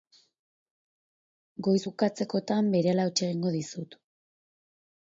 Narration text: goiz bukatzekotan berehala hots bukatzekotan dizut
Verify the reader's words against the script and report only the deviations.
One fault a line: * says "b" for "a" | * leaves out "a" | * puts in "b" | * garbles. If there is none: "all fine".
* says "egingo" for "bukatzekotan"